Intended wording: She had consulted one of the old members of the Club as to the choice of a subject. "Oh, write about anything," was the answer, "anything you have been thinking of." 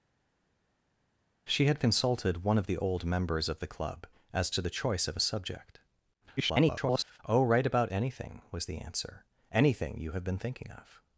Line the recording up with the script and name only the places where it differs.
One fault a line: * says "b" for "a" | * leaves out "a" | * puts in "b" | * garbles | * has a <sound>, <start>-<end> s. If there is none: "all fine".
* garbles